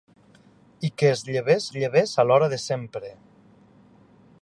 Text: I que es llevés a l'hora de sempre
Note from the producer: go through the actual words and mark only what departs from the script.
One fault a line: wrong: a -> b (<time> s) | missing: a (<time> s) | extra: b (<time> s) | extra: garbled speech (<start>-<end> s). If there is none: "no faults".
extra: llevés (1.7 s)